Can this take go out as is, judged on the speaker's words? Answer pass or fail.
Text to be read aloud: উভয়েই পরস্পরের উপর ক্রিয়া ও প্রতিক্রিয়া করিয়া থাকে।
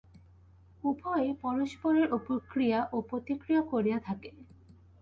pass